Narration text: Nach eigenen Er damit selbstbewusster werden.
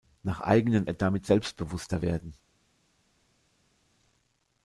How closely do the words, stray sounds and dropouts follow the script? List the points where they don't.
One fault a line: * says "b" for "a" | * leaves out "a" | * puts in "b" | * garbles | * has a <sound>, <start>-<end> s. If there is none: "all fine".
all fine